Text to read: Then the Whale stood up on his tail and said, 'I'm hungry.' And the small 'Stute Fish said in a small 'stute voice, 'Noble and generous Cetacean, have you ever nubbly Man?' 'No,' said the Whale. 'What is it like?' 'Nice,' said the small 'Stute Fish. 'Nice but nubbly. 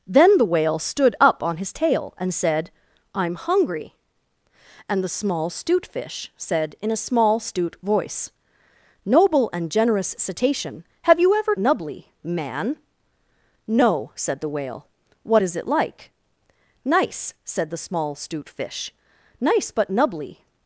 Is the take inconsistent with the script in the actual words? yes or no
no